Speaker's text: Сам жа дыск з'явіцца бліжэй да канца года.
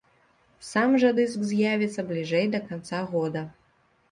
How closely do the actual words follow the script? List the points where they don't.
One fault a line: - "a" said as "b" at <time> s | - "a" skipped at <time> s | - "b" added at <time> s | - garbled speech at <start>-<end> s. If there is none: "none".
none